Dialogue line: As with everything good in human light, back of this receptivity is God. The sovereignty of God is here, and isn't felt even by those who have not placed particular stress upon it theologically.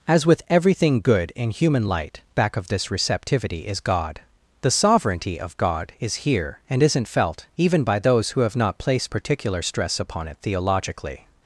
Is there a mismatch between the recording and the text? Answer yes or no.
no